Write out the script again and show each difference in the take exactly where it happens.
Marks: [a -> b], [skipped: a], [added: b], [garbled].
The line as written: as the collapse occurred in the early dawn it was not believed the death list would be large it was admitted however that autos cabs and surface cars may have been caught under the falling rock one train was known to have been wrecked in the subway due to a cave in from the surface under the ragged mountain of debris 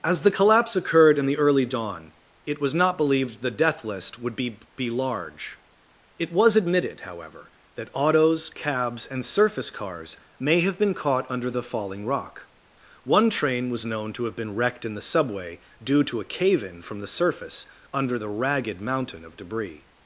as the collapse occurred in the early dawn it was not believed the death list would be [added: be] large it was admitted however that autos cabs and surface cars may have been caught under the falling rock one train was known to have been wrecked in the subway due to a cave in from the surface under the ragged mountain of debris